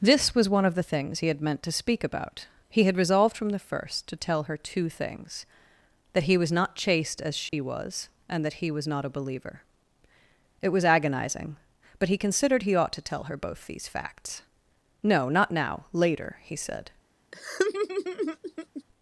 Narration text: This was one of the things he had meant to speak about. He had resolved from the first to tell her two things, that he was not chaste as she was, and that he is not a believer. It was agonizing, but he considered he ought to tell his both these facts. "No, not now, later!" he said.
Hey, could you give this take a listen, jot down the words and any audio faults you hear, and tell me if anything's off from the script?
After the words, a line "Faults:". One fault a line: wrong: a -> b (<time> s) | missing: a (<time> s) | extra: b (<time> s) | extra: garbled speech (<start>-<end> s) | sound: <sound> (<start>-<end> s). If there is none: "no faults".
This was one of the things he had meant to speak about. He had resolved from the first to tell her two things, that he was not chaste as she was, and that he was not a believer. It was agonizing, but he considered he ought to tell her both these facts. "No, not now, later!" he said.
Faults:
sound: dropout (7.5-7.5 s)
wrong: is -> was (8.7 s)
wrong: his -> her (13.2 s)
sound: laugh (17.3-18.8 s)